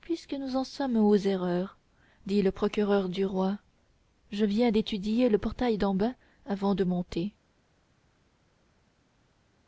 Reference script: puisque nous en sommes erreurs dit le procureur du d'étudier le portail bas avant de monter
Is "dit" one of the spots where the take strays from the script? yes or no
no